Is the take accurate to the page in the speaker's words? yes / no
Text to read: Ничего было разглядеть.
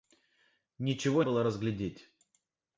yes